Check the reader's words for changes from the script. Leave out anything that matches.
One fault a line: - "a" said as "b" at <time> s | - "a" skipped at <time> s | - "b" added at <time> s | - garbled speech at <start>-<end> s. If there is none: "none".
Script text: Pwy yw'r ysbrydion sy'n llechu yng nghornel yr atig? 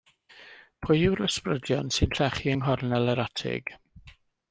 none